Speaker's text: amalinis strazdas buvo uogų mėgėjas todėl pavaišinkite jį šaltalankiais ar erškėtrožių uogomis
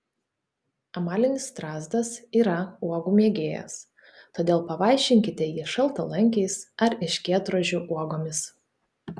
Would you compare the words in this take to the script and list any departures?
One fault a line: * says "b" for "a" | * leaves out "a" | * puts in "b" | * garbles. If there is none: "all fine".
* says "yra" for "buvo"